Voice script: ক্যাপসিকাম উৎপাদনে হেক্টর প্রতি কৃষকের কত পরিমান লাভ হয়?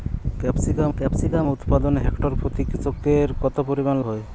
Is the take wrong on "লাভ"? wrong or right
wrong